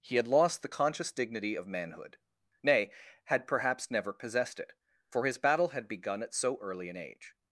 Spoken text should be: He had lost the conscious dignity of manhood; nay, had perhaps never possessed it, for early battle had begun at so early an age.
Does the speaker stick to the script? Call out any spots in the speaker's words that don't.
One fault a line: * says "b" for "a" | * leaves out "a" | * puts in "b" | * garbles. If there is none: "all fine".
* says "his" for "early"